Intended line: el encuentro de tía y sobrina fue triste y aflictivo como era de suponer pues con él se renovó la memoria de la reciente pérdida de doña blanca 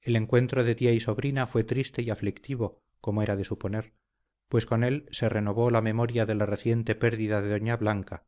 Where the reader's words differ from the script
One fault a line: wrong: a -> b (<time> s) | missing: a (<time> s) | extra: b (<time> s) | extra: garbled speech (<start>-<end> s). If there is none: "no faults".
no faults